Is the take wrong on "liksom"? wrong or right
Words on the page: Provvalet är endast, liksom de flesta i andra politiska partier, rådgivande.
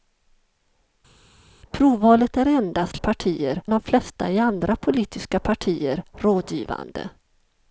wrong